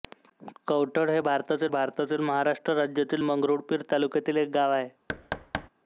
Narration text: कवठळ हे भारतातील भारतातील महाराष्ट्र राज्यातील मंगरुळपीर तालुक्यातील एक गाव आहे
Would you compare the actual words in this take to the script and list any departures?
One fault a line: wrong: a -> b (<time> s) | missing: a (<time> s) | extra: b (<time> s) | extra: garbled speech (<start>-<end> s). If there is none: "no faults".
no faults